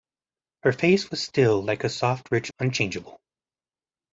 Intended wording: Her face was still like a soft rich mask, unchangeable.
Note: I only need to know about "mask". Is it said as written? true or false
false